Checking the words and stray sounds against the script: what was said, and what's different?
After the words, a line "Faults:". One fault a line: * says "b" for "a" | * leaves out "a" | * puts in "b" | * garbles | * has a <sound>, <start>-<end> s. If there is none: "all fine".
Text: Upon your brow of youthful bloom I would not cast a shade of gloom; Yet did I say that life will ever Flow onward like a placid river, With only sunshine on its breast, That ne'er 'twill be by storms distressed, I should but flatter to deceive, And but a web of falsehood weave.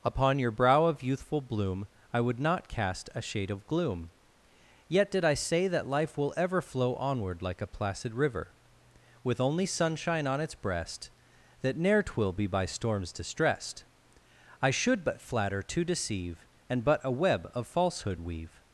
Upon your brow of youthful bloom I would not cast a shade of gloom; Yet did I say that life will ever Flow onward like a placid river, With only sunshine on its breast, That ne'er 'twill be by storms distressed, I should but flatter to deceive, And but a web of falsehood weave.
Faults:
all fine